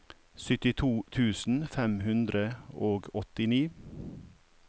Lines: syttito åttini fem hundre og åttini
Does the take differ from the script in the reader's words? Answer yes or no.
yes